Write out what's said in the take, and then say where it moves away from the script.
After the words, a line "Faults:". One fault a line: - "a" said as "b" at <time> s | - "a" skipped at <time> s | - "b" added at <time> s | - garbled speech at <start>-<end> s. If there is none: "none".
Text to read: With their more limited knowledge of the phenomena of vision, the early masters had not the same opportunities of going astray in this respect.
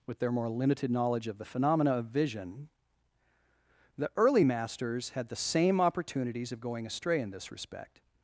With their more limited knowledge of the phenomena of vision, the early masters had the same opportunities of going astray in this respect.
Faults:
- "not" skipped at 5.3 s